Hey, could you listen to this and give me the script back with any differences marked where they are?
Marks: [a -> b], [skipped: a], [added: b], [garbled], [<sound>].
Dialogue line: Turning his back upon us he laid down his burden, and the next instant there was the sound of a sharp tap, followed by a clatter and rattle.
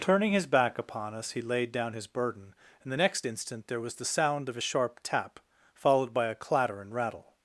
Turning his back upon us he laid down his burden, and the next instant there was the sound of a sharp tap, followed by a clatter and rattle.